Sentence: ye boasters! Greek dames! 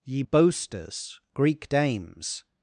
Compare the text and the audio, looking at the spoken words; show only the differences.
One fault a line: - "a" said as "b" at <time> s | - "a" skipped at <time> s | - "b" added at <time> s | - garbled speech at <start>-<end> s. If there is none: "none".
none